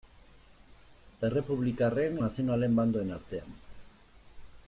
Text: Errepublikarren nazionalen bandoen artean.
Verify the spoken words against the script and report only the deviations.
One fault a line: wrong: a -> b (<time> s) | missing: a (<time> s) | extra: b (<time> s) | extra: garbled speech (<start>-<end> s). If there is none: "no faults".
no faults